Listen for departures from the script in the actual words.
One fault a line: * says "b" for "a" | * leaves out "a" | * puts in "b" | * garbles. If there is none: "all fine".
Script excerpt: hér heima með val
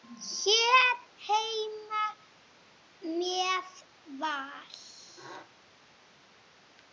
all fine